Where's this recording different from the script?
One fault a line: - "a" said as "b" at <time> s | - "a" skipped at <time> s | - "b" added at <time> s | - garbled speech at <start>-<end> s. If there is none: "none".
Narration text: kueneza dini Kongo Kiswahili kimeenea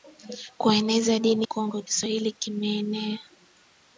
none